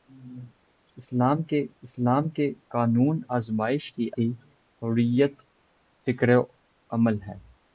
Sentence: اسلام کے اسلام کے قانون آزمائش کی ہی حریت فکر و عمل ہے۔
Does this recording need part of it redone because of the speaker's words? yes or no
no